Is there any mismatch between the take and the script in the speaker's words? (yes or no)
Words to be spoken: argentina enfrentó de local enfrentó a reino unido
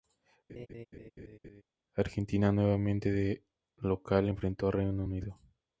yes